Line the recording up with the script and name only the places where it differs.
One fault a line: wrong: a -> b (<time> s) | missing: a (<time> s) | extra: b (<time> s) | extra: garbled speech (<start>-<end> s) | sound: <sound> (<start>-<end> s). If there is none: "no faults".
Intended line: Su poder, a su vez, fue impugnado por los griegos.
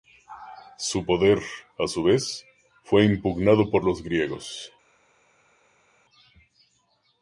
no faults